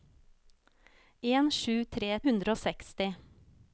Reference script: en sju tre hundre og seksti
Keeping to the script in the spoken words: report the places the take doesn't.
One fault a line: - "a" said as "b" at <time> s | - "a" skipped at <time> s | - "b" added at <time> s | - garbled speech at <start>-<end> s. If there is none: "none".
none